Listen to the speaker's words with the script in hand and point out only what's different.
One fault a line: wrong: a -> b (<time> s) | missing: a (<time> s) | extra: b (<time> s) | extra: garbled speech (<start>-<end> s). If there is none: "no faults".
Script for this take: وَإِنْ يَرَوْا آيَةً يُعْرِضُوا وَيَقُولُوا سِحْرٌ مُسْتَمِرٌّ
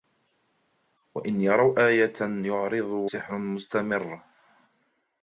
missing: وَيَقُولُوا (3.1 s)